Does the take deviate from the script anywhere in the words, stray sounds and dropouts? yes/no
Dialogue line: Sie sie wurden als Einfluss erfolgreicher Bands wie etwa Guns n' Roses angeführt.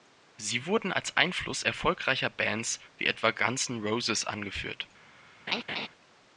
yes